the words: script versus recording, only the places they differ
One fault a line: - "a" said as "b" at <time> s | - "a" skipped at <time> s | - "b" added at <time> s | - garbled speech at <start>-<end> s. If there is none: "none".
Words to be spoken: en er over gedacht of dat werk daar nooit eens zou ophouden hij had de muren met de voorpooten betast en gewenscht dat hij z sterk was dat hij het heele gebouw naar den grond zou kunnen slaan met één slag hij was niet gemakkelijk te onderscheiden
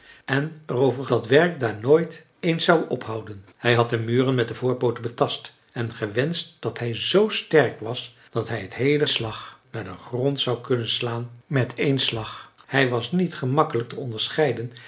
- "gedacht of" skipped at 1.1 s
- "gebouw" said as "slag" at 9.1 s